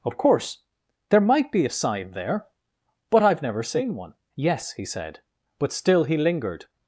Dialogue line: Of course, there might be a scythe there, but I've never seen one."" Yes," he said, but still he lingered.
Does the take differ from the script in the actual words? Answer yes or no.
yes